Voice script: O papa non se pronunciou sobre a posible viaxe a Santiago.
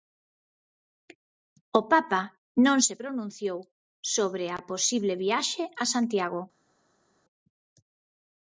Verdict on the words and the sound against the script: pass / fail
pass